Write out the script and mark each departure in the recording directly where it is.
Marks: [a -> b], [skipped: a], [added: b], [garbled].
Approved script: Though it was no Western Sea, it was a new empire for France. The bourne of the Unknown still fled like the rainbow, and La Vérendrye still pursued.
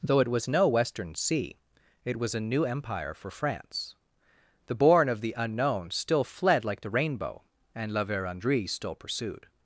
Though it was no Western Sea, it was a new empire for France. The bourne of the Unknown still fled like the rainbow, and La Vérendrye still pursued.